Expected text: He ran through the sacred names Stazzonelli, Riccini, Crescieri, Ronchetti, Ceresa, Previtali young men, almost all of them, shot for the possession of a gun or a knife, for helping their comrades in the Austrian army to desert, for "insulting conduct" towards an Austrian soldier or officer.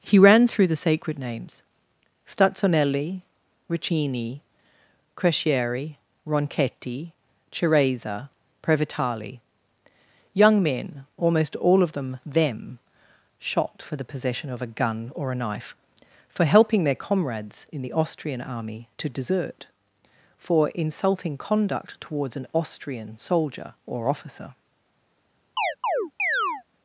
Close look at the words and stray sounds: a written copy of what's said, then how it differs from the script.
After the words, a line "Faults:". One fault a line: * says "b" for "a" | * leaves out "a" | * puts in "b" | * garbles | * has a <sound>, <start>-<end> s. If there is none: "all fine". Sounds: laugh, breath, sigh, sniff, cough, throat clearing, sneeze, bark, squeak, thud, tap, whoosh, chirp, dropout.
He ran through the sacred names Stazzonelli, Riccini, Crescieri, Ronchetti, Ceresa, Previtali young men, almost all of them them, shot for the possession of a gun or a knife, for helping their comrades in the Austrian army to desert, for "insulting conduct" towards an Austrian soldier or officer.
Faults:
* puts in "them"
* has a chirp, 25.6-26.6 s